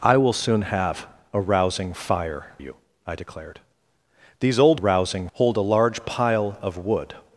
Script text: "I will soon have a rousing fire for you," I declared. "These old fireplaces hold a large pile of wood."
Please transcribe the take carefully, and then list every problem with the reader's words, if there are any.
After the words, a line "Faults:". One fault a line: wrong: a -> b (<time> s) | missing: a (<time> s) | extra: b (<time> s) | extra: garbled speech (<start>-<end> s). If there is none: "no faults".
"I will soon have a rousing fire you," I declared. "These old rousing hold a large pile of wood."
Faults:
missing: for (2.5 s)
wrong: fireplaces -> rousing (4.7 s)